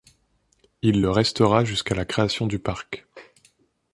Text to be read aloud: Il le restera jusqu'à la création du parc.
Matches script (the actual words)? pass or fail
pass